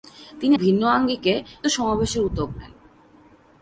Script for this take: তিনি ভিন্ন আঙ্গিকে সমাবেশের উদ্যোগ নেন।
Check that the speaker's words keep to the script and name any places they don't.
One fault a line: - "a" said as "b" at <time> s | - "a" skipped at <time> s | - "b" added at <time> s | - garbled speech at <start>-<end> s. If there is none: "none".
none